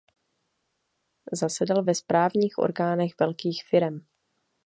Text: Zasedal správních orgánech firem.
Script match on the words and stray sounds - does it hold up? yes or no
no